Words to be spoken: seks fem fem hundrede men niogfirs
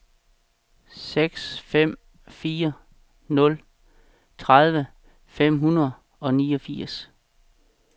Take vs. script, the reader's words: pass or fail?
fail